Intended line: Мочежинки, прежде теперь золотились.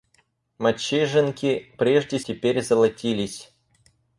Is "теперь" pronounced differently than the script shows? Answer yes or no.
no